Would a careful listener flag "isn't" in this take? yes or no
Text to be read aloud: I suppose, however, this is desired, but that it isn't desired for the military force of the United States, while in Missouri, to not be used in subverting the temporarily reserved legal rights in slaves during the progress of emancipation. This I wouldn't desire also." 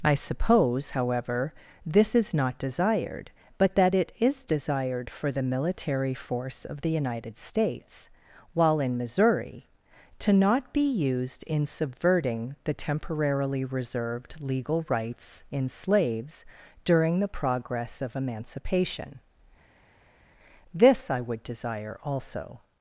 yes